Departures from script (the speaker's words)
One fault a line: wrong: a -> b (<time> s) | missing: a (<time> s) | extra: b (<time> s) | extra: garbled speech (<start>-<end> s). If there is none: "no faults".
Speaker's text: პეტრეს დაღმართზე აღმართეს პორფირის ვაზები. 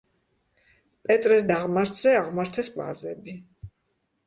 missing: პორფირის (2.7 s)